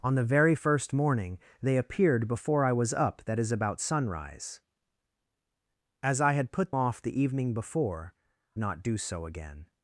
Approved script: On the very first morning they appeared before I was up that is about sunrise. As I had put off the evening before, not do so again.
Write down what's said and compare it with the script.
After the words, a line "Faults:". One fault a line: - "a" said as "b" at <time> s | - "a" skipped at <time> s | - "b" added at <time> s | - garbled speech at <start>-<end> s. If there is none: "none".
On the very first morning they appeared before I was up that is about sunrise. As I had put off the evening before, not do so again.
Faults:
none